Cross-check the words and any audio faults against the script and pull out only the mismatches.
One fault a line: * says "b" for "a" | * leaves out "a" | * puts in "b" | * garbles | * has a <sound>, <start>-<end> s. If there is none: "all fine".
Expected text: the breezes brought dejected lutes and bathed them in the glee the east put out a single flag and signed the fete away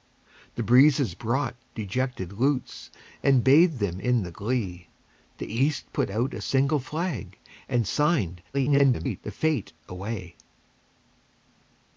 * garbles